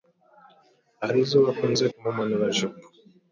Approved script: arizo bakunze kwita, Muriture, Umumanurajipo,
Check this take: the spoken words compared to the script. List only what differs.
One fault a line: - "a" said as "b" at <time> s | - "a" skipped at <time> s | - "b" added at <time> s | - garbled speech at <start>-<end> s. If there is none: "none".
- "kwita Muriture" skipped at 1.9 s